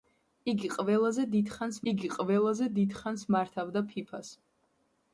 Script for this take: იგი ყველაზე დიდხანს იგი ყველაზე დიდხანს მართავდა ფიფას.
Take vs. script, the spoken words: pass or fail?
pass